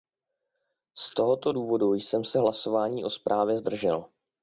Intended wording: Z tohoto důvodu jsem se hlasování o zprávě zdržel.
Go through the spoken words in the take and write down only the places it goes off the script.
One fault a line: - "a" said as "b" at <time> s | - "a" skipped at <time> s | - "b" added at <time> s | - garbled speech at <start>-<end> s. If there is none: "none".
none